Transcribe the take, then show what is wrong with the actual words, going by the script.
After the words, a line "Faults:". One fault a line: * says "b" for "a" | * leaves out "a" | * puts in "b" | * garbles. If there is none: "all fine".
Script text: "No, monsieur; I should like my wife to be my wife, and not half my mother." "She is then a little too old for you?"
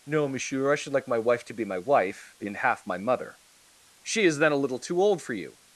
"No, monsieur; I should like my wife to be my wife, and half my mother." "She is then a little too old for you?"
Faults:
* leaves out "not"